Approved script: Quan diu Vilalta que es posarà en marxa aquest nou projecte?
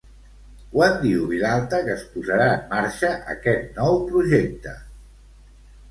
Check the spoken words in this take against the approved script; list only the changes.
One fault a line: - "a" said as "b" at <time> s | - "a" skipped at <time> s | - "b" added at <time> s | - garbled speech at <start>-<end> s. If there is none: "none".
none